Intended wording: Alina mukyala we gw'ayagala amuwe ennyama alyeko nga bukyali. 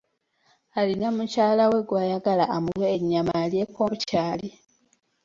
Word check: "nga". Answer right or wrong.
wrong